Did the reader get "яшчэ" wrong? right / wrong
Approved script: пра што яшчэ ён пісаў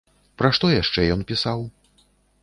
right